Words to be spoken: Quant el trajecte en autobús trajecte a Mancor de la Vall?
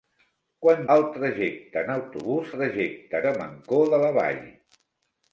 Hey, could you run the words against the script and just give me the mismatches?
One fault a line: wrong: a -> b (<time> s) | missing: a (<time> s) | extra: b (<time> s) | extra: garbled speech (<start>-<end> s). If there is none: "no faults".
no faults